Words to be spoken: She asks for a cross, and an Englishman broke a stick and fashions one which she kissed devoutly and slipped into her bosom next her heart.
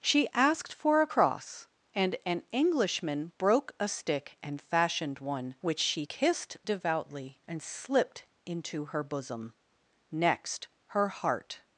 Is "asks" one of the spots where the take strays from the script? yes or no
yes